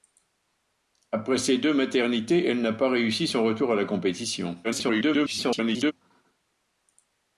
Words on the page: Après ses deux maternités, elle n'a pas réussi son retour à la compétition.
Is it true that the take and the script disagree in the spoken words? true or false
true